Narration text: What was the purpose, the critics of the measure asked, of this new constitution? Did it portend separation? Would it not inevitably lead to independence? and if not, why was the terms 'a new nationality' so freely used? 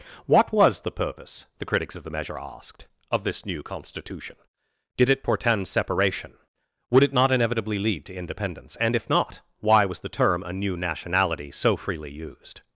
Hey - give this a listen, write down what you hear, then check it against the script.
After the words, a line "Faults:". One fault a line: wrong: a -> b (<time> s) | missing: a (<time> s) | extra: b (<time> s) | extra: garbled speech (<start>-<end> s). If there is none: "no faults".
What was the purpose, the critics of the measure asked, of this new constitution? Did it portend separation? Would it not inevitably lead to independence? and if not, why was the term 'a new nationality' so freely used?
Faults:
wrong: terms -> term (10.1 s)